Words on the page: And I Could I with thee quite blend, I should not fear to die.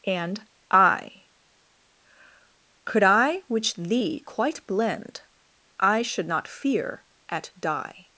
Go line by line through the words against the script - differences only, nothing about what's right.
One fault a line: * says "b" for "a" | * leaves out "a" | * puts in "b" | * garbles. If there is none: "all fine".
* says "which" for "with"
* says "at" for "to"